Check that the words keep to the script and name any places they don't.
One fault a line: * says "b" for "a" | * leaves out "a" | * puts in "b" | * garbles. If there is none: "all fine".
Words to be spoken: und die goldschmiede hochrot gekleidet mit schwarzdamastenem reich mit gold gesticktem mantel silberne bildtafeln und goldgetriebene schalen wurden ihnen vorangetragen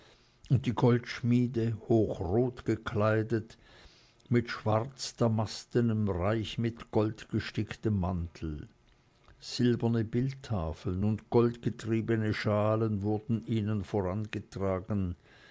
all fine